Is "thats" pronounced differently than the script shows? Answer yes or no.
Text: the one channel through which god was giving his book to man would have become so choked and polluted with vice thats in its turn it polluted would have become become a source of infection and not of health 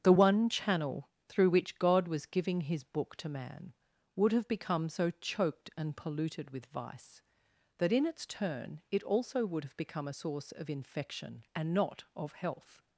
yes